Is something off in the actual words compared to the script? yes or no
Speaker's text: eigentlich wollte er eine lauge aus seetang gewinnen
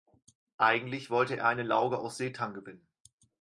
no